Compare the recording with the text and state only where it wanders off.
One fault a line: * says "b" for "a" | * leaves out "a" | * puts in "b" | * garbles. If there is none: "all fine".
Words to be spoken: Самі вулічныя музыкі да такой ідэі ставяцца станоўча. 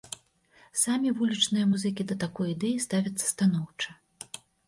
all fine